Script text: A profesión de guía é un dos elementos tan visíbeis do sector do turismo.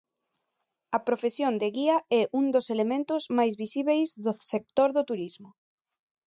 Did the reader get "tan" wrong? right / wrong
wrong